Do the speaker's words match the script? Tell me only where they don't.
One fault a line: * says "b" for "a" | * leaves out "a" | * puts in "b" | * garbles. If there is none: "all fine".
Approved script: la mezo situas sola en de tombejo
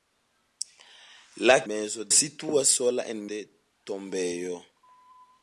all fine